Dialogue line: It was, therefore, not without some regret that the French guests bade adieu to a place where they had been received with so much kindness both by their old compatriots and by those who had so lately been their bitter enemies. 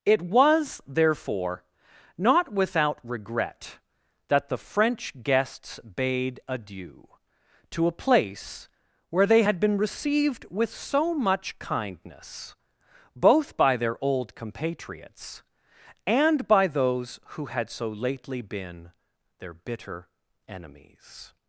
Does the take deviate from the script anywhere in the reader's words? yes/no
yes